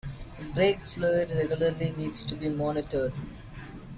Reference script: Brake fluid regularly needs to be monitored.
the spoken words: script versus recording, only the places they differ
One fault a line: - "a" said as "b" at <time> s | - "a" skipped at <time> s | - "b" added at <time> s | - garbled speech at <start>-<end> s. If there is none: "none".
none